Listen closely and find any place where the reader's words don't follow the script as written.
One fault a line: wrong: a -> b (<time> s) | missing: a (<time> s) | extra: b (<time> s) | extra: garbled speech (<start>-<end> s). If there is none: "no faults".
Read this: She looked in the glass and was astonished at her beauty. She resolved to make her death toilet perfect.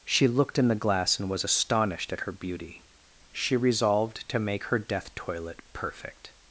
no faults